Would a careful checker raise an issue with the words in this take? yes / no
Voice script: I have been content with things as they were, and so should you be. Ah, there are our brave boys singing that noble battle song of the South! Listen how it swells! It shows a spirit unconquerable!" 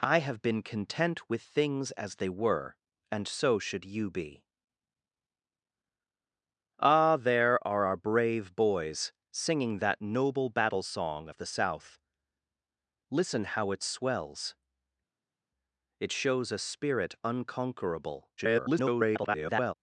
yes